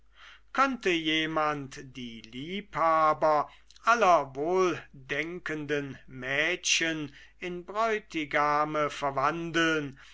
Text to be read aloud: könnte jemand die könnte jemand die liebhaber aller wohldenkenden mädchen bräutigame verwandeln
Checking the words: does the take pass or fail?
fail